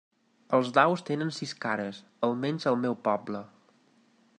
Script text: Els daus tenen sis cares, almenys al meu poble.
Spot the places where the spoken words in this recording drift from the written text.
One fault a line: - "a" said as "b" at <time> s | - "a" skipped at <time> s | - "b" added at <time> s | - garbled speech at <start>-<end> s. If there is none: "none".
none